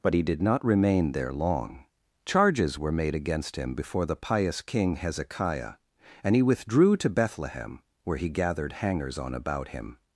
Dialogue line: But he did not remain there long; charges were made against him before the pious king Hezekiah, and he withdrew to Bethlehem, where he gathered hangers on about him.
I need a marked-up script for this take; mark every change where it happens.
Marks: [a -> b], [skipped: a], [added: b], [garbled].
But he did not remain there long; charges were made against him before the pious king Hezekiah, and he withdrew to Bethlehem, where he gathered hangers on about him.